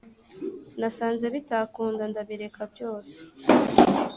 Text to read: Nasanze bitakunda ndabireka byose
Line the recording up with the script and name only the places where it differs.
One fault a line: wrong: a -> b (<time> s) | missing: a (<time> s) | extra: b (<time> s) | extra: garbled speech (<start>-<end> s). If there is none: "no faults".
no faults